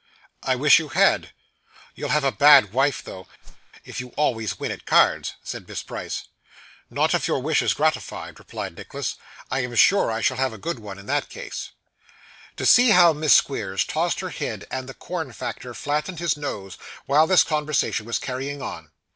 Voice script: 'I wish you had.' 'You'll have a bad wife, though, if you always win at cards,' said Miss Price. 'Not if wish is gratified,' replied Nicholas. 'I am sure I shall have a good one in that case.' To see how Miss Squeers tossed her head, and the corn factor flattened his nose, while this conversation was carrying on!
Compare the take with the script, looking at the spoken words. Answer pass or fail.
fail